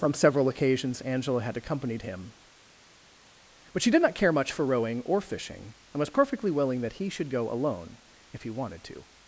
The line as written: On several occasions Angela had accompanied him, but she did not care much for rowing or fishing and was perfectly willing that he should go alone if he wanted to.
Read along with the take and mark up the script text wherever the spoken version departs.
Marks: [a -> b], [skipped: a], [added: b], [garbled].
[On -> From] several occasions Angela had accompanied him, but she did not care much for rowing or fishing and was perfectly willing that he should go alone if he wanted to.